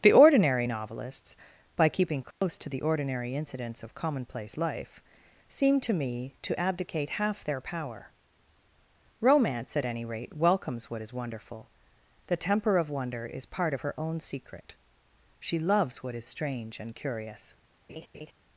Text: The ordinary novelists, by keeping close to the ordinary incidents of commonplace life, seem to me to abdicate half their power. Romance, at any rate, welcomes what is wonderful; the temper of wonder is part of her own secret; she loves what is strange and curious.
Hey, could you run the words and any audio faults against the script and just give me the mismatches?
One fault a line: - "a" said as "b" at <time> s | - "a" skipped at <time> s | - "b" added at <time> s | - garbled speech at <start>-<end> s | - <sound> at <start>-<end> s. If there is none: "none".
- dropout at 2.3-2.4 s
- laugh at 17.9-18.3 s